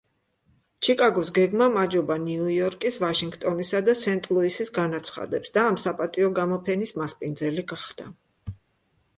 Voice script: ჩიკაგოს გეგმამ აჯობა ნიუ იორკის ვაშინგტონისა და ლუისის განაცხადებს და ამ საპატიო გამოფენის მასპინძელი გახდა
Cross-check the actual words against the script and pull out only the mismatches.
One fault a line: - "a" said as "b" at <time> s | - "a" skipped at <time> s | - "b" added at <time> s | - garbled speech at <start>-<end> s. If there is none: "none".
- "სენტ" added at 4.0 s